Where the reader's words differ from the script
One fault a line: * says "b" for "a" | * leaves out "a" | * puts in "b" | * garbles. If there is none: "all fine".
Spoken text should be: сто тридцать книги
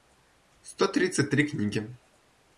* puts in "три"